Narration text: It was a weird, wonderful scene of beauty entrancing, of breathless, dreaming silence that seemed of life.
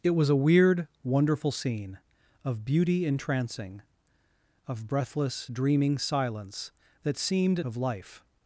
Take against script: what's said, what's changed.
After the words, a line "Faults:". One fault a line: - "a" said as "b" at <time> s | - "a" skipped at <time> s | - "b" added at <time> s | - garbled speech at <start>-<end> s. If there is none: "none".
It was a weird, wonderful scene of beauty entrancing, of breathless, dreaming silence that seemed of life.
Faults:
none